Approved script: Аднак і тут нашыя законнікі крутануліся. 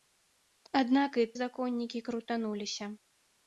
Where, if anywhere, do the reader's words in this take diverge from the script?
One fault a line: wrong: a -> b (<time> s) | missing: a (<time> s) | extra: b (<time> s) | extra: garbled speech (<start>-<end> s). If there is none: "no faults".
missing: тут нашыя (1.3 s)